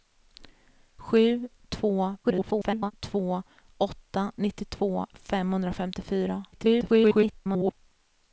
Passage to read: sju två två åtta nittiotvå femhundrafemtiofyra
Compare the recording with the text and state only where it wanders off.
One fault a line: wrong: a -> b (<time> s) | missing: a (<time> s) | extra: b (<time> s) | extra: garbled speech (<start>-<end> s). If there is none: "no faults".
extra: garbled speech (2.2-2.9 s)
extra: garbled speech (6.5-7.7 s)